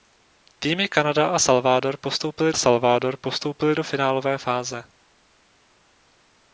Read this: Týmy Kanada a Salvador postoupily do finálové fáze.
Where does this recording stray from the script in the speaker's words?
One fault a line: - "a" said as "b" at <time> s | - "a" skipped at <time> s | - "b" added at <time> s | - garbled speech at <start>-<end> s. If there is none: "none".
- "Salvador postoupily" added at 2.5 s